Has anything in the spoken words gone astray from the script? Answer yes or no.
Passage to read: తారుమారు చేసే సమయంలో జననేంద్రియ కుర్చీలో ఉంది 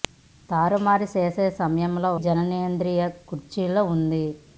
no